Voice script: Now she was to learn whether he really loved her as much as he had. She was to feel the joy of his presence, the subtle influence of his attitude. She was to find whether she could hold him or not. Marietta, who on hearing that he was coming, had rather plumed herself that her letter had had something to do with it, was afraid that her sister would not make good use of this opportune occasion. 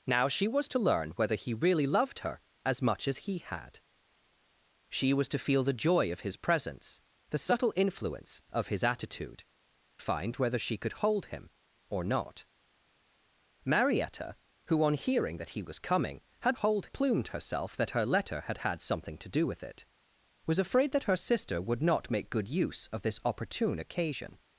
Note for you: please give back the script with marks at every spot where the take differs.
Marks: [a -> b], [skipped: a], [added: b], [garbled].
Now she was to learn whether he really loved her as much as he had. She was to feel the joy of his presence, the subtle influence of his attitude. [skipped: She was to] find whether she could hold him or not. Marietta, who on hearing that he was coming, had [rather -> hold] plumed herself that her letter had had something to do with it, was afraid that her sister would not make good use of this opportune occasion.